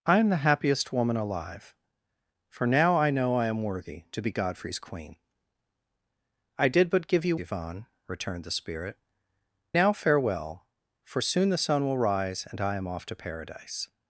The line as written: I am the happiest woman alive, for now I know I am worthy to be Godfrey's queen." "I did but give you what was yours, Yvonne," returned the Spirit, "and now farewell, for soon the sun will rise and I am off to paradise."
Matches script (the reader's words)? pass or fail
fail